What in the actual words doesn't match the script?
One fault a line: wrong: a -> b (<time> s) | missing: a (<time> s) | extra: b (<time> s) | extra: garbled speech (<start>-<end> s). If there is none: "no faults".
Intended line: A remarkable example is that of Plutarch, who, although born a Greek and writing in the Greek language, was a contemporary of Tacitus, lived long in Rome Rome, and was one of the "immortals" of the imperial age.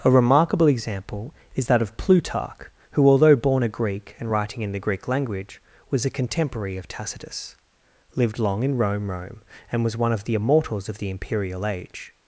no faults